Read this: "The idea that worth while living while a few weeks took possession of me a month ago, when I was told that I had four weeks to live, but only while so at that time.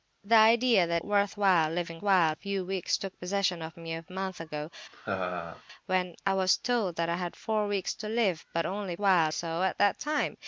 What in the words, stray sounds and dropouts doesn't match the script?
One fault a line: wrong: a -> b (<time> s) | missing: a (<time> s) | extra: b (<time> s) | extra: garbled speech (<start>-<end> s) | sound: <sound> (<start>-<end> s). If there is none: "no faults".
sound: laugh (4.9-5.6 s)